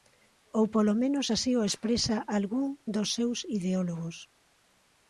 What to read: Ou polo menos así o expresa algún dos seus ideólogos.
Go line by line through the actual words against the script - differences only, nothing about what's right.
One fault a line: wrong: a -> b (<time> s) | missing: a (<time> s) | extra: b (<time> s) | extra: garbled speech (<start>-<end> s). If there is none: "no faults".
no faults